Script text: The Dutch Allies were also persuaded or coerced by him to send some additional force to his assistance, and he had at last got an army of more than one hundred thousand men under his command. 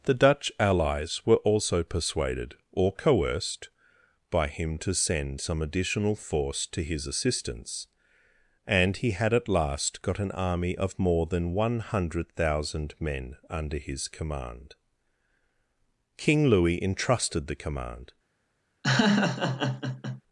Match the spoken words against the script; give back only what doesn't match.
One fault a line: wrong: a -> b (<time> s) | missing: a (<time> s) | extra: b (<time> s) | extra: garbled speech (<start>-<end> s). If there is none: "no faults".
extra: King Louis entrusted the command (16.2 s)